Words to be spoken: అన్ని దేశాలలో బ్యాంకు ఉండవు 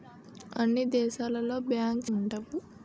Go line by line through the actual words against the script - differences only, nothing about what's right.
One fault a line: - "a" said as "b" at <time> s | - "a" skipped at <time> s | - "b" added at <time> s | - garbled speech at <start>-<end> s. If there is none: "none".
none